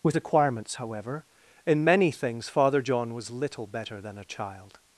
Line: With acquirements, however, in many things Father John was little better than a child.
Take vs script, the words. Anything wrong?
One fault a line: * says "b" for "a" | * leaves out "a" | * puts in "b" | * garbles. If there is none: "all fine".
all fine